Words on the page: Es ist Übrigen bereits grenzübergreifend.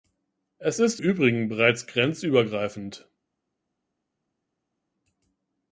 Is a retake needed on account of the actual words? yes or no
no